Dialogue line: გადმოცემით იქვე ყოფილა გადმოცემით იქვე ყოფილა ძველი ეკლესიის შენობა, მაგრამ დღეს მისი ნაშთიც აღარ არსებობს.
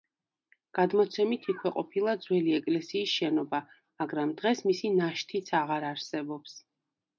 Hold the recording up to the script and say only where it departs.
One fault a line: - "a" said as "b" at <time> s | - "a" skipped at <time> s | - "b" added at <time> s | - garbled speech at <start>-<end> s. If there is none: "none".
- "გადმოცემით იქვე ყოფილა" skipped at 2.1 s